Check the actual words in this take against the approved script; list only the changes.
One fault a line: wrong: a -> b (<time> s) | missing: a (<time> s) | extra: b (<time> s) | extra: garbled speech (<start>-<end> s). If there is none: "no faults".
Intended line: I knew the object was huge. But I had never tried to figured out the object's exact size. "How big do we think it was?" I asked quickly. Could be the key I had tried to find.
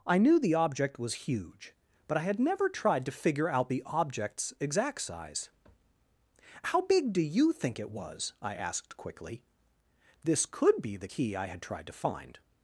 wrong: figured -> figure (3.1 s)
wrong: we -> you (7.2 s)
extra: This (10.2 s)